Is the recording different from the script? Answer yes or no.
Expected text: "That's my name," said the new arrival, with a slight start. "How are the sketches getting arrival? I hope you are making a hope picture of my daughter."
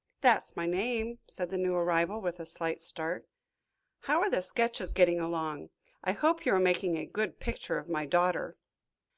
yes